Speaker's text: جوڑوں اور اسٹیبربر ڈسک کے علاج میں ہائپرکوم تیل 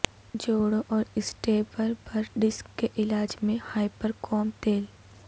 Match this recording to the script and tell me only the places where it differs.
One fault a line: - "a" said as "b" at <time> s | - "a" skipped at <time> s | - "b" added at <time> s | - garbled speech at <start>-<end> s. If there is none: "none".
none